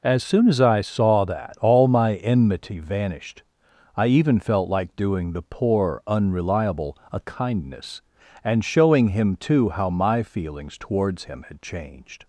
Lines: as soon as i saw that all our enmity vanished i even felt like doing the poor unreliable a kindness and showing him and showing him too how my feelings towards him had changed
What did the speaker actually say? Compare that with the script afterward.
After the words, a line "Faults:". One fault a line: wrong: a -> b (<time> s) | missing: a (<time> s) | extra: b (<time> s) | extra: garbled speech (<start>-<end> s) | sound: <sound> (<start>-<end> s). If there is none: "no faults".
as soon as i saw that all my enmity vanished i even felt like doing the poor unreliable a kindness and showing him too how my feelings towards him had changed
Faults:
wrong: our -> my (1.9 s)
missing: and showing him (9.4 s)